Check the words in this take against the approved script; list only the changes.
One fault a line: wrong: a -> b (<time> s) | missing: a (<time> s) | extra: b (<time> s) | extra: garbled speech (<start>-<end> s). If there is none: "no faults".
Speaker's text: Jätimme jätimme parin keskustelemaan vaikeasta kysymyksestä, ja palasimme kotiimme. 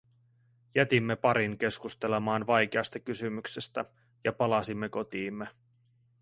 missing: jätimme (1.1 s)